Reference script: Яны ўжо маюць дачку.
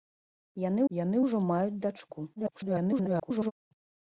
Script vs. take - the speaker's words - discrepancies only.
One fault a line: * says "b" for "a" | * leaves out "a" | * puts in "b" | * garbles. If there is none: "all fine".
* puts in "яны"
* garbles